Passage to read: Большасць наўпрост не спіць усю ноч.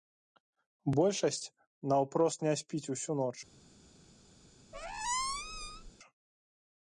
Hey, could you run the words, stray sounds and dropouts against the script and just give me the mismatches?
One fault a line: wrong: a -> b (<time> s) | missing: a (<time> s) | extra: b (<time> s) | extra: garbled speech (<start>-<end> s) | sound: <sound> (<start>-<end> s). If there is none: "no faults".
sound: squeak (4.7-5.9 s)